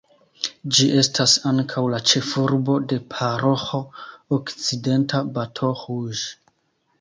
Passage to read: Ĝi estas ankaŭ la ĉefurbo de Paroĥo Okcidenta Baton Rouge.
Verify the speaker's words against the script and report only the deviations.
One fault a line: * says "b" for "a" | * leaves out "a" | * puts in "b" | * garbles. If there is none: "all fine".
all fine